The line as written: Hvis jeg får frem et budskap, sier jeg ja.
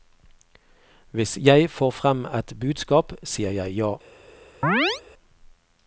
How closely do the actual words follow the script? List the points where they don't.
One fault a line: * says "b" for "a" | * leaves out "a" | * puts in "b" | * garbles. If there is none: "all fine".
all fine